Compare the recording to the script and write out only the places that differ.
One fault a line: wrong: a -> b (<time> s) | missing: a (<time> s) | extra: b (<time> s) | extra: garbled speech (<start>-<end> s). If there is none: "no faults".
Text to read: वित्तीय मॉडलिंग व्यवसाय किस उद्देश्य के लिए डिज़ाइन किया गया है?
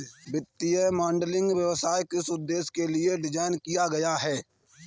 no faults